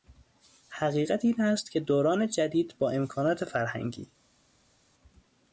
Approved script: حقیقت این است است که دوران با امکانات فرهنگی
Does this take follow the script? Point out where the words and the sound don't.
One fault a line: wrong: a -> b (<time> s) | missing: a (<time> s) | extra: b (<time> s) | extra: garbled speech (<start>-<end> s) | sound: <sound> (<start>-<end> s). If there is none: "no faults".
missing: است (1.7 s)
extra: جدید (2.3 s)